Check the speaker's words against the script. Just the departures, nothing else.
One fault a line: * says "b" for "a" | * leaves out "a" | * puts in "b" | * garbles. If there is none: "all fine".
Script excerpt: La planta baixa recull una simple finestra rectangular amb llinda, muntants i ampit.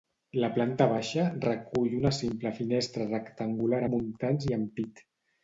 * leaves out "amb llinda"